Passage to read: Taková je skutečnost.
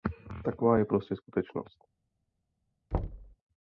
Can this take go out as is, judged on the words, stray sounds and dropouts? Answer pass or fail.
fail